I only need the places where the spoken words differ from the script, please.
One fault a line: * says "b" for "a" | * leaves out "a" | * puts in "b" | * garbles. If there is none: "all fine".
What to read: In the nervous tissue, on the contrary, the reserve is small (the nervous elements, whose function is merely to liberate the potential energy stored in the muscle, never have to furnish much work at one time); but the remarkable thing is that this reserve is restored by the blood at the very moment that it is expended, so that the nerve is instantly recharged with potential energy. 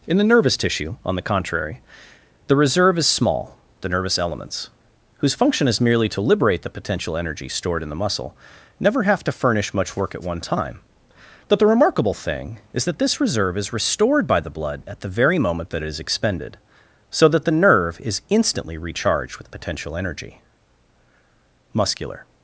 * puts in "Muscular"